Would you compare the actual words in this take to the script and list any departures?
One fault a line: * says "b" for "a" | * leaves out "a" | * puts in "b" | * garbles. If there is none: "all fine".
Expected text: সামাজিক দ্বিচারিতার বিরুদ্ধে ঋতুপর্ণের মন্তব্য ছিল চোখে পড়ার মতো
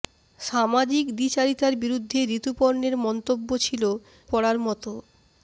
* leaves out "চোখে"